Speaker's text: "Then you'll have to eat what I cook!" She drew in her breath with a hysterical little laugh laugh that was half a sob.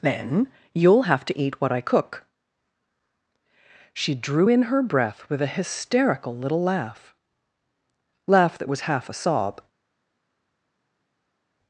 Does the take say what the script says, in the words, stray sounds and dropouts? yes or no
yes